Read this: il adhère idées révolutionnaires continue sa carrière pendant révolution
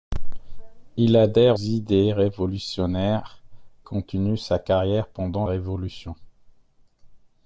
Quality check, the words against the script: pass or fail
pass